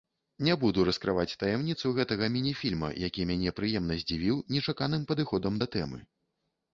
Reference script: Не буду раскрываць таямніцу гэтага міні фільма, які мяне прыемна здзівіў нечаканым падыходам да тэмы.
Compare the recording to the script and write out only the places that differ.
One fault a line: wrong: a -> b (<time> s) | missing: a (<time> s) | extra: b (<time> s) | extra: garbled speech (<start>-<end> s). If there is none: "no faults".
no faults